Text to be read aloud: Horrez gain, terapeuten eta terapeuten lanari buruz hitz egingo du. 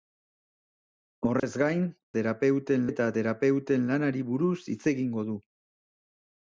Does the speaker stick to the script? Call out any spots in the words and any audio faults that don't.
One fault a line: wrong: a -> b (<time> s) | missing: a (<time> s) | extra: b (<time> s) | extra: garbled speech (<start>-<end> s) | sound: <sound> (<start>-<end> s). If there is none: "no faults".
sound: dropout (1.4-1.4 s)